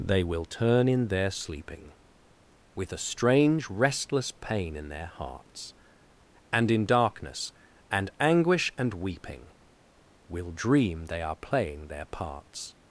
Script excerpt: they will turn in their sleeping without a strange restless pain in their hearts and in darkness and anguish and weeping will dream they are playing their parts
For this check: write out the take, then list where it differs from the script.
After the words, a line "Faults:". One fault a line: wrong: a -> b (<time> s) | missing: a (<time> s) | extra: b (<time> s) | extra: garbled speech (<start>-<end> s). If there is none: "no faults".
they will turn in their sleeping with a strange restless pain in their hearts and in darkness and anguish and weeping will dream they are playing their parts
Faults:
wrong: without -> with (2.8 s)